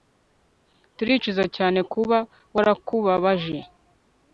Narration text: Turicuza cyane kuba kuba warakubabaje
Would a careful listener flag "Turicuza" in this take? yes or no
no